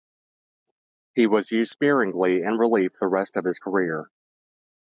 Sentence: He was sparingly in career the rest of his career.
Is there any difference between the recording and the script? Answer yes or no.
yes